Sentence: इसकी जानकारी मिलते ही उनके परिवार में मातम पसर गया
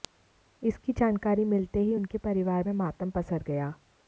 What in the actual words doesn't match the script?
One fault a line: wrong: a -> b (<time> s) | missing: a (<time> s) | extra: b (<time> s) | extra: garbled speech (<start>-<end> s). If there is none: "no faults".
no faults